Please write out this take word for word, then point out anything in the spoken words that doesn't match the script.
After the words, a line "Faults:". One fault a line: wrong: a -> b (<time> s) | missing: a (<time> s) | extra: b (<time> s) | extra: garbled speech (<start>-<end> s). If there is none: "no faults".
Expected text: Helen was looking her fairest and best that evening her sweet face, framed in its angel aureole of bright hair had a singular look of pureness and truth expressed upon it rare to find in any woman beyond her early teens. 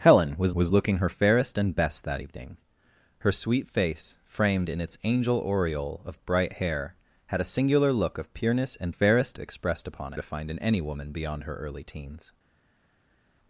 Helen was was looking her fairest and best that evening her sweet face, framed in its angel aureole of bright hair had a singular look of pureness and fairest expressed upon to find in any woman beyond her early teens.
Faults:
extra: was (0.5 s)
wrong: truth -> fairest (8.9 s)
missing: it rare (10.1 s)